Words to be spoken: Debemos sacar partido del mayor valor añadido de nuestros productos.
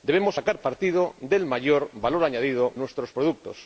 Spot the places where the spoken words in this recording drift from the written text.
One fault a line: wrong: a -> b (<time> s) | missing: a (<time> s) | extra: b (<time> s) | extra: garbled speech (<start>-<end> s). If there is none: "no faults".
missing: de (2.7 s)